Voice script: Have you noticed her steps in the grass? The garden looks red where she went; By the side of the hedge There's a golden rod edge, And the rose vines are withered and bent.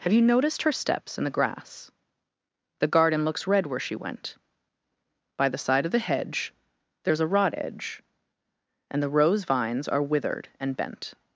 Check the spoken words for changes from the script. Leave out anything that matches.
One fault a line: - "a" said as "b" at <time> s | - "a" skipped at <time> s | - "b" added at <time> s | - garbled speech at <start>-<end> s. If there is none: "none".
- "golden" skipped at 7.3 s